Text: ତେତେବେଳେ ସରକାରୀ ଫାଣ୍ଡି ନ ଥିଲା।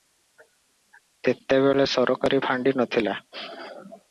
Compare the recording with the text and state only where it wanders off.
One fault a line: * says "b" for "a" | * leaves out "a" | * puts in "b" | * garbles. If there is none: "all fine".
all fine